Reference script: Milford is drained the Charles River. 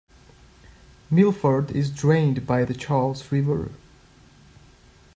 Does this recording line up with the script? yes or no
no